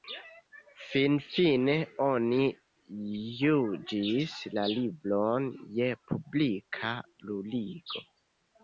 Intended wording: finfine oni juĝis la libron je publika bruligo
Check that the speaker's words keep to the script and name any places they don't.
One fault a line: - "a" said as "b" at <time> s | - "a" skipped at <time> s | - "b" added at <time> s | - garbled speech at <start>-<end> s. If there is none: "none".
none